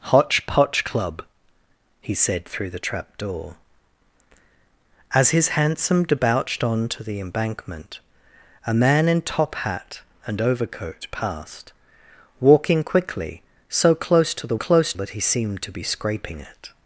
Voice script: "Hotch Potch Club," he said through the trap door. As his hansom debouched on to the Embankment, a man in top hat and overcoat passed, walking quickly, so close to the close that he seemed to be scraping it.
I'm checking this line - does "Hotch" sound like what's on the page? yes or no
yes